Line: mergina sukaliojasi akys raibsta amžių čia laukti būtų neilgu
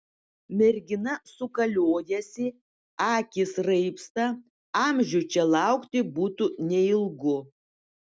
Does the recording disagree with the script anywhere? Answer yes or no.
no